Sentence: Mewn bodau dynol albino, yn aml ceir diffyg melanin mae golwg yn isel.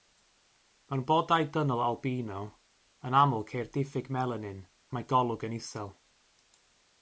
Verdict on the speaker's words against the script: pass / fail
pass